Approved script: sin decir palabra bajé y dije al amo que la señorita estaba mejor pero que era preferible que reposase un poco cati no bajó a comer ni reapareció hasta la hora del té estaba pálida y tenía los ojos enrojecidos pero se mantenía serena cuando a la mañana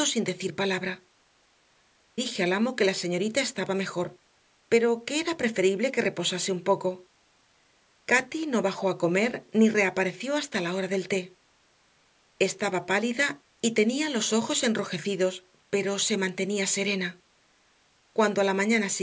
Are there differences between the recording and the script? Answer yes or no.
yes